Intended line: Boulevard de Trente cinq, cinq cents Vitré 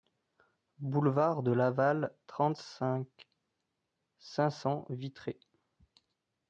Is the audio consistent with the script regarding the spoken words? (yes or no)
no